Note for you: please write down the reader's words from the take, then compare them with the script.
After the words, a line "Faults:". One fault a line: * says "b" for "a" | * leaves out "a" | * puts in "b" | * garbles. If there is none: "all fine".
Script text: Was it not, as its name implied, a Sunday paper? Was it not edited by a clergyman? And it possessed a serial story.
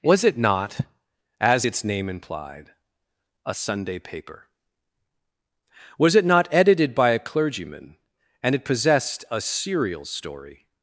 Was it not, as its name implied, a Sunday paper? Was it not edited by a clergyman? And it possessed a serial story.
Faults:
all fine